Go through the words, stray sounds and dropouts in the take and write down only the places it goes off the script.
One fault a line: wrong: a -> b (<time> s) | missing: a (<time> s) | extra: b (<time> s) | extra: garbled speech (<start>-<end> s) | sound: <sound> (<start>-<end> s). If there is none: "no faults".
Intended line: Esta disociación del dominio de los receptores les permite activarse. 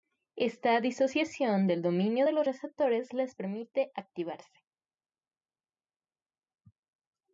no faults